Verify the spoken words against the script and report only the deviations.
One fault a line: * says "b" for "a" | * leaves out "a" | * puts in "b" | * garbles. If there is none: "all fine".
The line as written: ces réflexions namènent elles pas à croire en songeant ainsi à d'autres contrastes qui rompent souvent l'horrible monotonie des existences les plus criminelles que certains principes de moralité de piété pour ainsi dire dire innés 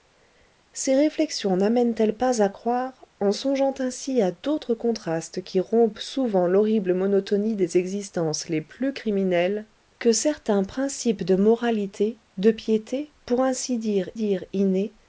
all fine